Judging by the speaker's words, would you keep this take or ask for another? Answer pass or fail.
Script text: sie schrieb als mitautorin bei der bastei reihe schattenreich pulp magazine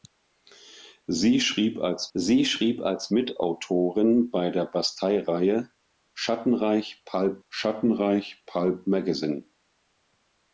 fail